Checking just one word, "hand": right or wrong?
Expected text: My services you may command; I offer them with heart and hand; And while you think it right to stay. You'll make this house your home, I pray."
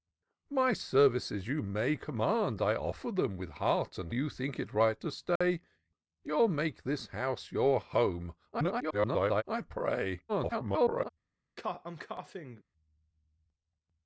wrong